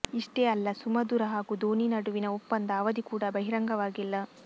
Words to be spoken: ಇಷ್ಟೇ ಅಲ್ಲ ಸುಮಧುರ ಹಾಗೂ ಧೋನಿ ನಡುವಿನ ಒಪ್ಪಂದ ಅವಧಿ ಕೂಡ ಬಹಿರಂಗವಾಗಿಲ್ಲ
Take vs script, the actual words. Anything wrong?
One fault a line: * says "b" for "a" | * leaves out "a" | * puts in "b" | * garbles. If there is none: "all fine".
all fine